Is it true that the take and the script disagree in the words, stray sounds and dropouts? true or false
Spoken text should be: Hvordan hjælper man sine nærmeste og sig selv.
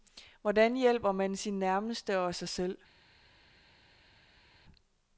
false